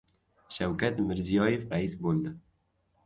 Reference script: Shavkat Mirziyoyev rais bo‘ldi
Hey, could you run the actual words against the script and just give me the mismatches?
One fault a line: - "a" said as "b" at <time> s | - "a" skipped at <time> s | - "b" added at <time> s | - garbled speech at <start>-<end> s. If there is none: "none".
none